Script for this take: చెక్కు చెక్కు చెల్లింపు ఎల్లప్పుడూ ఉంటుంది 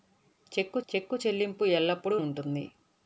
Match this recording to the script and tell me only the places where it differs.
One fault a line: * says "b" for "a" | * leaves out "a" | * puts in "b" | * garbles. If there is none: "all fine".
all fine